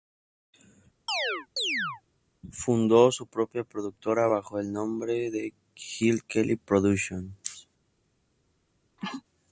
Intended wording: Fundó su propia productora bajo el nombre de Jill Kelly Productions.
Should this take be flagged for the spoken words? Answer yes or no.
no